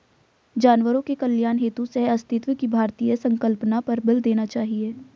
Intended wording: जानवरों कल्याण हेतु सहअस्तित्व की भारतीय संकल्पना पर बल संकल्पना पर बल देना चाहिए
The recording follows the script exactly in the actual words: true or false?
false